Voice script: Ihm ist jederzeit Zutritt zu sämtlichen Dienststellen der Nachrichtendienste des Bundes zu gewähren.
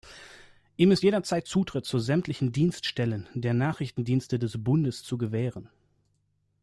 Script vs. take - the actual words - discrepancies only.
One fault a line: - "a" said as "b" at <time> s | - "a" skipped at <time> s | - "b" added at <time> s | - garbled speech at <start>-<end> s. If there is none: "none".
none